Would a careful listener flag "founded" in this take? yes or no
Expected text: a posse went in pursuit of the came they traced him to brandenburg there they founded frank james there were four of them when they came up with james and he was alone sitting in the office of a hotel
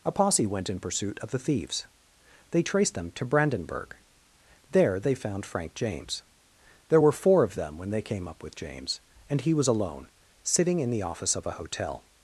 yes